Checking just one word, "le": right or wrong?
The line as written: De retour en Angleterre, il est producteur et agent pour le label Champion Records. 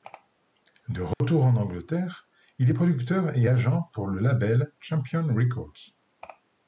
right